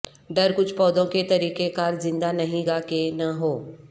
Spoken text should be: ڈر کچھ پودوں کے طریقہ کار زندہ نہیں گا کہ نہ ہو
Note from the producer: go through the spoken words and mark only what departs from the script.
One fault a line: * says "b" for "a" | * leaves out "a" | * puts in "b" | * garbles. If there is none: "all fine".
all fine